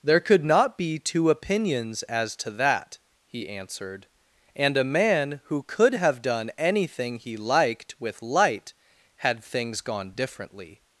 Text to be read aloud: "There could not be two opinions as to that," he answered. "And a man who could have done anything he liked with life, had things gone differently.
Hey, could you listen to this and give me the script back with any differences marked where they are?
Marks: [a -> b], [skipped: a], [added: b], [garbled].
"There could not be two opinions as to that," he answered. "And a man who could have done anything he liked with [life, -> light] had things gone differently.